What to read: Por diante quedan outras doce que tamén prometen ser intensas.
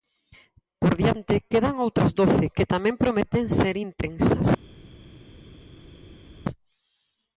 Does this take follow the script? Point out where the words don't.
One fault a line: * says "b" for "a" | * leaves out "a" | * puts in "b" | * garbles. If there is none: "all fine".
all fine